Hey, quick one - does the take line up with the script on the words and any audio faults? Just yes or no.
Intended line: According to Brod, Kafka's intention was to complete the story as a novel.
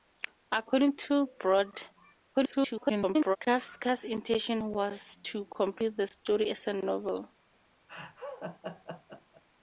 no